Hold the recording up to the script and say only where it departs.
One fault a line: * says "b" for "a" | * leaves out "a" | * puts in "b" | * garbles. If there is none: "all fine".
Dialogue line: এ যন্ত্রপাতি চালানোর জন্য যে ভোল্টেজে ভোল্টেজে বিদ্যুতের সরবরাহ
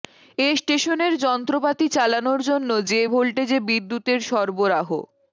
* puts in "স্টেশনের"
* leaves out "ভোল্টেজে"